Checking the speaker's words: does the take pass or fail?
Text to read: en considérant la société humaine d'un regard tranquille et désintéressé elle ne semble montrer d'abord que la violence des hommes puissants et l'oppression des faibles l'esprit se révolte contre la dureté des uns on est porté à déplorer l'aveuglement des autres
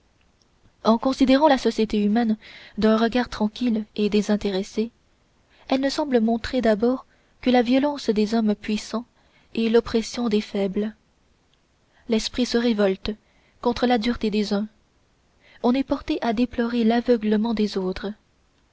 pass